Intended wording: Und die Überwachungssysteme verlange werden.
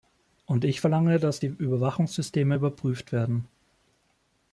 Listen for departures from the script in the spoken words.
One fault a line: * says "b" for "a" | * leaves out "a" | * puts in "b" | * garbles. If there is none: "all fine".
* puts in "ich verlange dass"
* says "überprüft" for "verlange"